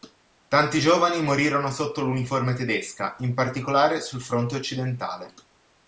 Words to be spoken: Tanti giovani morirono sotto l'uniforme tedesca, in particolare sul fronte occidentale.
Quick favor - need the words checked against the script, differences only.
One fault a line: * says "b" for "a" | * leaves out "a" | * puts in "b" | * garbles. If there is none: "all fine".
all fine